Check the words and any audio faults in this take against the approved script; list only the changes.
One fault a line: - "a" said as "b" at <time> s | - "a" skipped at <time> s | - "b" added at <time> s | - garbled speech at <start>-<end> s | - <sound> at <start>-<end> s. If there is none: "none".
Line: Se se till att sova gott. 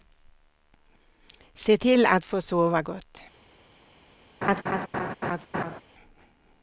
- "se" skipped at 1.8 s
- "få" added at 2.2 s
- laugh at 4.4-5.8 s